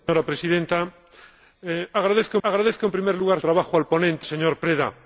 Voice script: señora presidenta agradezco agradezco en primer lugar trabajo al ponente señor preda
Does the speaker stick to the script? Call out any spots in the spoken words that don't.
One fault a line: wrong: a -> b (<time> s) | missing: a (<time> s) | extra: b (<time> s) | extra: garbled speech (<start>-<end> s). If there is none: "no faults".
no faults